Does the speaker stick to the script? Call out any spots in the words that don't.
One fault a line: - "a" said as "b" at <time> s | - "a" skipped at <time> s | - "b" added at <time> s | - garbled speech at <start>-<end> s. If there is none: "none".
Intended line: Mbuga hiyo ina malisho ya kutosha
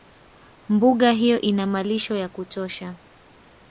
none